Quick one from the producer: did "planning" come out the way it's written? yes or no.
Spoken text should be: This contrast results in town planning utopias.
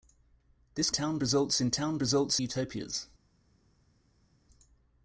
no